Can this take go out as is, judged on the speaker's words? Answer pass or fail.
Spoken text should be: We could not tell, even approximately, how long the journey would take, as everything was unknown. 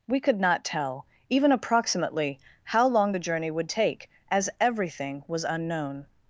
pass